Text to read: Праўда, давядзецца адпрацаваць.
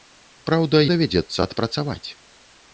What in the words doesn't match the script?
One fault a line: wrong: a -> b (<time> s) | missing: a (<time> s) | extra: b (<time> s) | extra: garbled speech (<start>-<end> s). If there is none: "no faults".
no faults